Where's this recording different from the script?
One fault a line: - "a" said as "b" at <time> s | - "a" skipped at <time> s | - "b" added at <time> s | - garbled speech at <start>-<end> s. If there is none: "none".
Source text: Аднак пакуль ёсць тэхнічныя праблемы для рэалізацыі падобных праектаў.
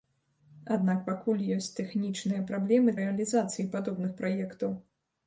- "для" skipped at 3.0 s